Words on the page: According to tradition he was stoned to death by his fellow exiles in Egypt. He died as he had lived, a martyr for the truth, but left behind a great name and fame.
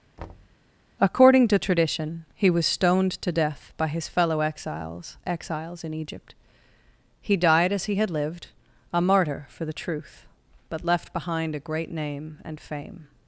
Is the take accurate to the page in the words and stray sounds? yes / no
no